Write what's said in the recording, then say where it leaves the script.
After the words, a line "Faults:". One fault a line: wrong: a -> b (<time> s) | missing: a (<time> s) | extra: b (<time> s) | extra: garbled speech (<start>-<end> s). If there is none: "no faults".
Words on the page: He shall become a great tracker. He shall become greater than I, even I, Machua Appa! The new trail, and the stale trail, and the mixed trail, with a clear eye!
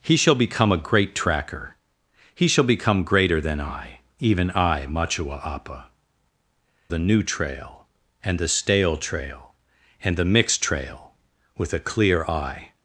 He shall become a great tracker. He shall become greater than I, even I, Machua Appa! The new trail, and the stale trail, and the mixed trail, with a clear eye!
Faults:
no faults